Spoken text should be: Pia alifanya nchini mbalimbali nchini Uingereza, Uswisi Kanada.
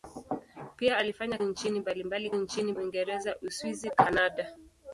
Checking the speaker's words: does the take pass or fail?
pass